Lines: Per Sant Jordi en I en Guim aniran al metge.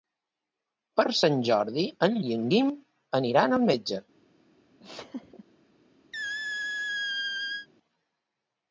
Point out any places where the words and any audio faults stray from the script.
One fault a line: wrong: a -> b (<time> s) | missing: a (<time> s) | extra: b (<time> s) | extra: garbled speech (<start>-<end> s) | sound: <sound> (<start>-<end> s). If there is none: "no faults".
sound: laugh (4.8-5.4 s)
sound: squeak (6.1-7.7 s)